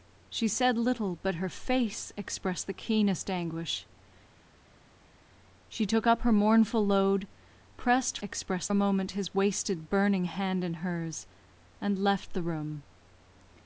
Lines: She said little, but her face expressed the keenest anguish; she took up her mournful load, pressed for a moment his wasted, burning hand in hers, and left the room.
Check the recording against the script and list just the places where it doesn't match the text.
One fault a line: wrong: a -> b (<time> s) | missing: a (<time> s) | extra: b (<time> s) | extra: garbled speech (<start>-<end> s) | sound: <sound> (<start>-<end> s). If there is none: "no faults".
wrong: for -> expressed (8.2 s)